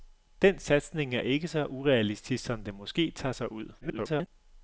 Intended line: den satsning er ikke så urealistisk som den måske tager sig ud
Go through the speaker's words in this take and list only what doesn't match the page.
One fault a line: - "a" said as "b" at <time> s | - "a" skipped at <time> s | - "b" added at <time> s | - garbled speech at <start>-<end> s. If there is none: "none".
- garbled speech at 3.8-4.3 s